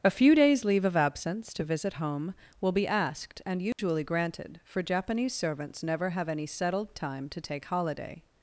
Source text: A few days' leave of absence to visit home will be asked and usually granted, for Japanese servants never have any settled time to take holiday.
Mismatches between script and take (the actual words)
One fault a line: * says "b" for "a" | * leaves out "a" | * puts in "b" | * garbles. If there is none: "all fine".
all fine